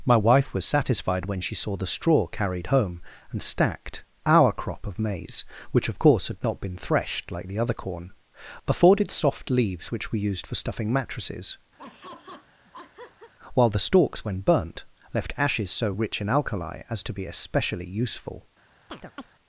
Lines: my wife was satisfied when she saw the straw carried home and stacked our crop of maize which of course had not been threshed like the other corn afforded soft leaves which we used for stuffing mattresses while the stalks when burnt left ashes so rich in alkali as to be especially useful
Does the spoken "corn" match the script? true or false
true